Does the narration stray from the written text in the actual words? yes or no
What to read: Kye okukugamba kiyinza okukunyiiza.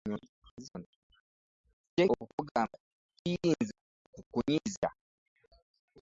no